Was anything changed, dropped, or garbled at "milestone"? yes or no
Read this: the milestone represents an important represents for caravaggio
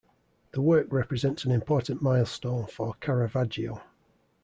yes